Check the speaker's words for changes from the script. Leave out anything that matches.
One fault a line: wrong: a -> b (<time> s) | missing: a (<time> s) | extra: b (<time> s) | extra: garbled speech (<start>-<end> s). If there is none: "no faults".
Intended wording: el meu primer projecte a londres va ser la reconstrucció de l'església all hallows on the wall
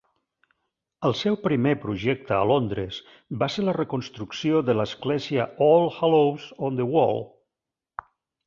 wrong: meu -> seu (1.2 s)